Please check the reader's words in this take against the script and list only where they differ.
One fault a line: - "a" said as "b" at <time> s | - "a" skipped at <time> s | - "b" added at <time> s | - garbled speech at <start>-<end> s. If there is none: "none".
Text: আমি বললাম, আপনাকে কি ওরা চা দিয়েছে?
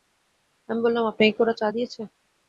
none